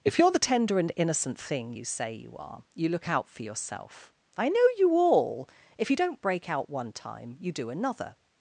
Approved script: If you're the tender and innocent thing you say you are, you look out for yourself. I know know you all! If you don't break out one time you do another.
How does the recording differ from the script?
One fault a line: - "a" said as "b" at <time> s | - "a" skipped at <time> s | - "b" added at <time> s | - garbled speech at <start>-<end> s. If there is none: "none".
- "know" skipped at 4.6 s